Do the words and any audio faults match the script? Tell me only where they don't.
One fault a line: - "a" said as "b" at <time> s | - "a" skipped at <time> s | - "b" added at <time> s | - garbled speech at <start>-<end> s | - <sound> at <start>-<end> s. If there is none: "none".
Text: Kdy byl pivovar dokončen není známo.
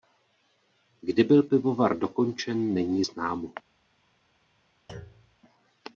- thud at 4.9-5.4 s